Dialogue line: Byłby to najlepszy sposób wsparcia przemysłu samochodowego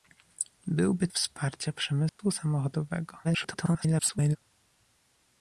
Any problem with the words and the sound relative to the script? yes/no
yes